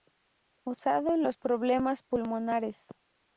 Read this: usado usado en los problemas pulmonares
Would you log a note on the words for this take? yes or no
yes